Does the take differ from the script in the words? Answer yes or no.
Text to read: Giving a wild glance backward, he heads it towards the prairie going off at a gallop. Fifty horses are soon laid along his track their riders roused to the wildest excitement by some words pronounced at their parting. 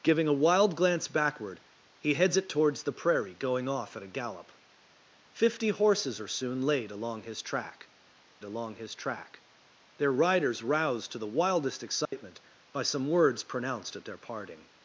yes